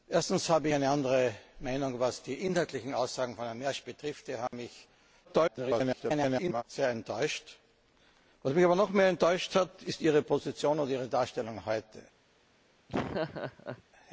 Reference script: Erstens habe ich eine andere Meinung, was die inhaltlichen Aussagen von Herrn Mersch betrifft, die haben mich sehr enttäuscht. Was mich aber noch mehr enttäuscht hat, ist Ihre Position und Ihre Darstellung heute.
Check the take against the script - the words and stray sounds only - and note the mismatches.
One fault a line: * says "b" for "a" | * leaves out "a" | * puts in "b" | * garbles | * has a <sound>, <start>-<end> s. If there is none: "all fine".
* leaves out "ich"
* has a dropout, 4.5-4.5 s
* garbles
* has a laugh, 12.9-13.8 s